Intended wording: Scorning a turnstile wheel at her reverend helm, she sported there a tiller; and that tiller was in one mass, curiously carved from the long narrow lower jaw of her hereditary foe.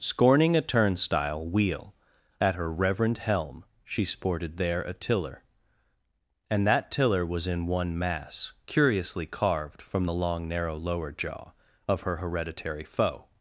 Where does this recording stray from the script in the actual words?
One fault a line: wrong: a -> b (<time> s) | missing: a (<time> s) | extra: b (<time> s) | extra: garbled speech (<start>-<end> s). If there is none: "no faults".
no faults